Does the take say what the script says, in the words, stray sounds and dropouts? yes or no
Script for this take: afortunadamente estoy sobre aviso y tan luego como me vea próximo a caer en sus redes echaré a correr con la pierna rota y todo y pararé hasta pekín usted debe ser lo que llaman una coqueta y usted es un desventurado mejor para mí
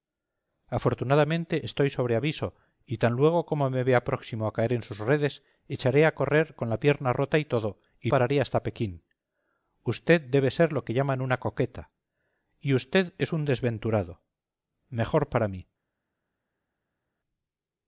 yes